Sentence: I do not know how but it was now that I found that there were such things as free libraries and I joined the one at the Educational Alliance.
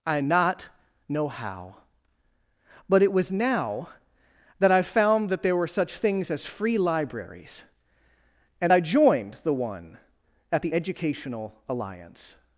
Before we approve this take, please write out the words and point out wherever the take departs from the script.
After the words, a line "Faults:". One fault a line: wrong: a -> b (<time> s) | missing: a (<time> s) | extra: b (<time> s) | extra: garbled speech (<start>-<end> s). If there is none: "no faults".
I not know how but it was now that I found that there were such things as free libraries and I joined the one at the Educational Alliance.
Faults:
missing: do (0.2 s)